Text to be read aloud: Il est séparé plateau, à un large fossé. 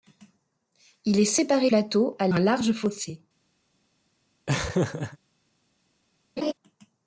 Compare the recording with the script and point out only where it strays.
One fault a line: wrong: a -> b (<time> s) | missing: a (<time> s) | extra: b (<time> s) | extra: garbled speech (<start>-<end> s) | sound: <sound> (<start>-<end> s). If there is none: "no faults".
sound: laugh (4.5-5.2 s)
sound: laugh (6.4-6.5 s)